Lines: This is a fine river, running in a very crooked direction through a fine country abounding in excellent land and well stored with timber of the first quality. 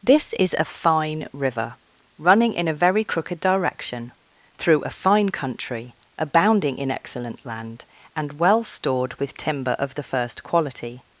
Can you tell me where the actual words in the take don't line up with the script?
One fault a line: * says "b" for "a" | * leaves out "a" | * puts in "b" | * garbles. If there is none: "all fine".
all fine